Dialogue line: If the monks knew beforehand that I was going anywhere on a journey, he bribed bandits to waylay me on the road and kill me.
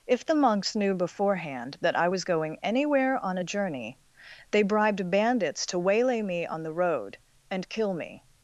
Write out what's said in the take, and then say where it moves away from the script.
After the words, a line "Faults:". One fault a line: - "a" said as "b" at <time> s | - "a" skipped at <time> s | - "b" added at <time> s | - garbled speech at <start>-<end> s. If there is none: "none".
If the monks knew beforehand that I was going anywhere on a journey, they bribed bandits to waylay me on the road and kill me.
Faults:
- "he" said as "they" at 4.5 s